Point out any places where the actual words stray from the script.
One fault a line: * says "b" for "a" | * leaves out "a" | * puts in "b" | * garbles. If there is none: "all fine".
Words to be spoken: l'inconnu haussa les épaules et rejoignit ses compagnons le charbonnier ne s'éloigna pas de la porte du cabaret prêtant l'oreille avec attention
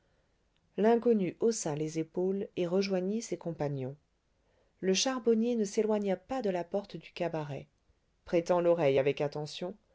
all fine